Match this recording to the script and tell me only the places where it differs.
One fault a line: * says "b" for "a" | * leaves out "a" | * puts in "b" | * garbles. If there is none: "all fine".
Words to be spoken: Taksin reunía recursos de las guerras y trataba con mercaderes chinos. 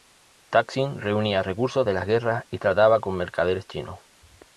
all fine